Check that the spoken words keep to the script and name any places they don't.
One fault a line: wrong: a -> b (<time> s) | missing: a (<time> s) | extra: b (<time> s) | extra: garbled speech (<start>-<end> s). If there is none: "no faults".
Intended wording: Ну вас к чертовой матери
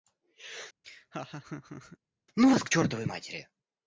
no faults